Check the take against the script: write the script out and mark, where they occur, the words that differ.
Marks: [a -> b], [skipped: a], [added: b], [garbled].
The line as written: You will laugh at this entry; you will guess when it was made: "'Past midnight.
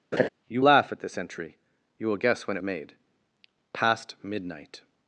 You [skipped: will] laugh at this entry; you will guess when it [skipped: was] made: "'Past midnight.